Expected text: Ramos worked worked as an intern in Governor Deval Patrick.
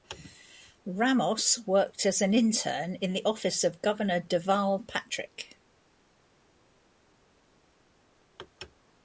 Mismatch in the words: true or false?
true